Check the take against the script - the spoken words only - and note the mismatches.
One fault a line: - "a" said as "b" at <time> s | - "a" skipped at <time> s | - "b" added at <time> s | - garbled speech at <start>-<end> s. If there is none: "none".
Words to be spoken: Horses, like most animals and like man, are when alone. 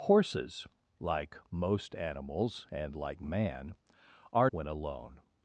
none